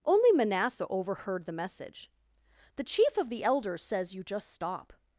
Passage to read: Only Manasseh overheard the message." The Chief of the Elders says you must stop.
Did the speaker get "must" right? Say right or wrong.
wrong